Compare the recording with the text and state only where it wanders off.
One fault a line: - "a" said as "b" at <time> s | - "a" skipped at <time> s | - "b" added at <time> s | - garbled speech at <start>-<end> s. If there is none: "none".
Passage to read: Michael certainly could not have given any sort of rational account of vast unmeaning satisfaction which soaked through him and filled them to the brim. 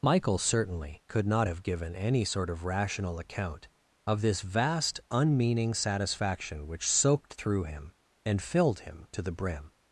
- "this" added at 4.2 s
- "them" said as "him" at 8.8 s